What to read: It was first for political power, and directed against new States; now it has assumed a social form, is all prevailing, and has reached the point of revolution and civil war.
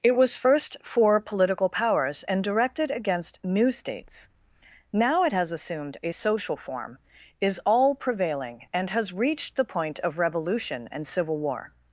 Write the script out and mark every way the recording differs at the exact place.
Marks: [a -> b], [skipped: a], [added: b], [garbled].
It was first for political [power, -> powers] and directed against new States; now it has assumed a social form, is all prevailing, and has reached the point of revolution and civil war.